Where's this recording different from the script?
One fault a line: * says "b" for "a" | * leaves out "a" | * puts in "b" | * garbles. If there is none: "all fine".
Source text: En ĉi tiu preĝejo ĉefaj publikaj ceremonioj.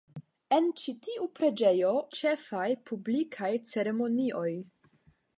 all fine